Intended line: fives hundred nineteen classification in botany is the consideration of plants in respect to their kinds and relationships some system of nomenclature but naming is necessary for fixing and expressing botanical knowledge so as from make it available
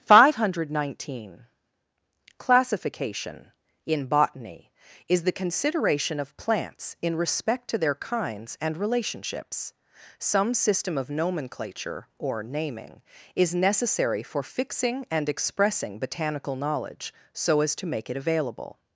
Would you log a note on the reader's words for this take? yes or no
yes